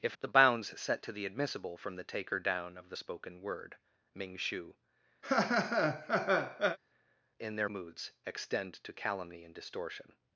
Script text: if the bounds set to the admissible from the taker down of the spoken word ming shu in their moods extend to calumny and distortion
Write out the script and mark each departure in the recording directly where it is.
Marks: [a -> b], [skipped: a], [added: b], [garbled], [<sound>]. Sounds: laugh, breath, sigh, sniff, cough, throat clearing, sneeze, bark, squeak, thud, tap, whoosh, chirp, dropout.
if the bounds set to the admissible from the taker down of the spoken word ming shu [laugh] in their moods extend to calumny and distortion